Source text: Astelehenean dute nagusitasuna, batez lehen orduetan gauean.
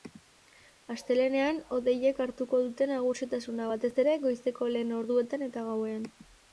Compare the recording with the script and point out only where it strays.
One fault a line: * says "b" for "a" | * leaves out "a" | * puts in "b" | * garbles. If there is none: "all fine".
* puts in "hodeiek hartuko"
* puts in "ere goizeko"
* puts in "eta"